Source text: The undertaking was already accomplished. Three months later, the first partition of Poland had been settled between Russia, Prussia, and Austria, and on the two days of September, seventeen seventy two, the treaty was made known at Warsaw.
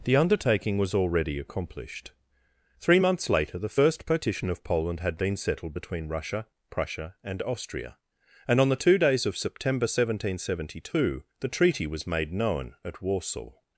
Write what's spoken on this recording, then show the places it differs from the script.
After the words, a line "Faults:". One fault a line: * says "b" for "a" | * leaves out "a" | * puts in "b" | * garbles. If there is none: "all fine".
The undertaking was already accomplished. Three months later, the first partition of Poland had been settled between Russia, Prussia, and Austria, and on the two days of September, seventeen seventy two, the treaty was made known at Warsaw.
Faults:
all fine